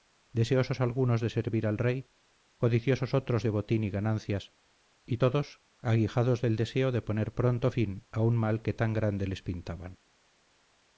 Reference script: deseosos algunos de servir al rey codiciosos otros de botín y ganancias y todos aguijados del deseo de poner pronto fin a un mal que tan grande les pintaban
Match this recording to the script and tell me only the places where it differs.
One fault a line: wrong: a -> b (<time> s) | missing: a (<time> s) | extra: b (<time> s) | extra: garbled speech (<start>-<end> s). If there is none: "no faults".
no faults